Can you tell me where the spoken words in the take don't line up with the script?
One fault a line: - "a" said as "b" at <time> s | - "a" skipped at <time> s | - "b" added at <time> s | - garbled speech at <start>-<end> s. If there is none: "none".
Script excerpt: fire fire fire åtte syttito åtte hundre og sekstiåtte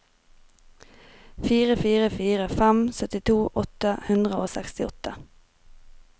- "åtte" said as "fem" at 2.6 s